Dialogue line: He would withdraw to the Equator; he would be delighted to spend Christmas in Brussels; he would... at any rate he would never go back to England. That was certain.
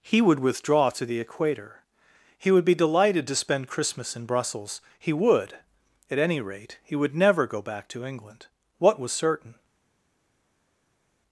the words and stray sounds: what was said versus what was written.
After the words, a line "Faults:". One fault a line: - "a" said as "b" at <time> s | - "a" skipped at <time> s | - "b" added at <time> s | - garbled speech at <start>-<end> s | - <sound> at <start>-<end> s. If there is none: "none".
He would withdraw to the Equator; he would be delighted to spend Christmas in Brussels; he would... at any rate he would never go back to England. What was certain.
Faults:
- "That" said as "What" at 8.8 s